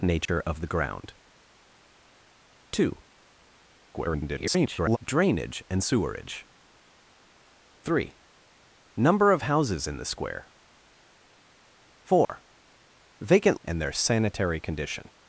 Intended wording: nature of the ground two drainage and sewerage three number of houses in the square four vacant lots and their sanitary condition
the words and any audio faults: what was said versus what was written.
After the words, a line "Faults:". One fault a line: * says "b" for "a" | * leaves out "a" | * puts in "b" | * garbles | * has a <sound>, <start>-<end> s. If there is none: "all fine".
nature of the ground two [garbled] drainage and sewerage three number of houses in the square four vacant and their sanitary condition
Faults:
* has a dropout, 0.3-0.3 s
* garbles
* has a dropout, 12.2-12.3 s
* leaves out "lots"